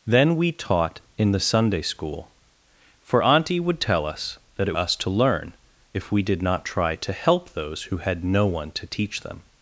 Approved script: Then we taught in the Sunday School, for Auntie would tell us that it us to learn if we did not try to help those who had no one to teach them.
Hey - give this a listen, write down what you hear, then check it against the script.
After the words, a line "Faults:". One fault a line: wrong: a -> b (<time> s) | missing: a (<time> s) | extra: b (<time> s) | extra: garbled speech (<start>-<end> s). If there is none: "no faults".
Then we taught in the Sunday School, for Auntie would tell us that it us to learn if we did not try to help those who had no one to teach them.
Faults:
no faults